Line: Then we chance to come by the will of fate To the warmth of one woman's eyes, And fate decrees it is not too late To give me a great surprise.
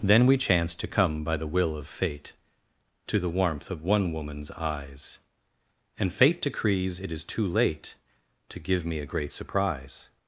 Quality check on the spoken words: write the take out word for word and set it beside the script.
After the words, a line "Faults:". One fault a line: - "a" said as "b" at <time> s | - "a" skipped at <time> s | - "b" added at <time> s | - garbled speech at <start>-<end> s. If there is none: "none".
Then we chance to come by the will of fate To the warmth of one woman's eyes, And fate decrees it is too late To give me a great surprise.
Faults:
- "not" skipped at 7.2 s